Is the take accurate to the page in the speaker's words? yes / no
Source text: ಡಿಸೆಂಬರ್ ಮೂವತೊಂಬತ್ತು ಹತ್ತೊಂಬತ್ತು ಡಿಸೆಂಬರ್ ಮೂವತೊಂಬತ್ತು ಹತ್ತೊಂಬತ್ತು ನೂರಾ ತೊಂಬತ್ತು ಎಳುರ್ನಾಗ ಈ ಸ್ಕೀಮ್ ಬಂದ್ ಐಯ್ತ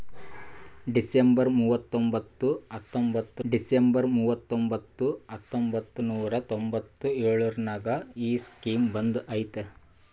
yes